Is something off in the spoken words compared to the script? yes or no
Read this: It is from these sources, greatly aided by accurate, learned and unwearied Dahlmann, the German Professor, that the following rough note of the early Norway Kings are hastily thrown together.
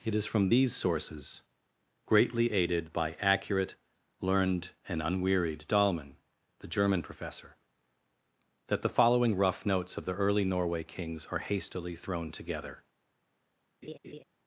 yes